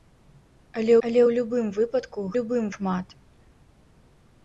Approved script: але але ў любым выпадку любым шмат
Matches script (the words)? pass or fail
pass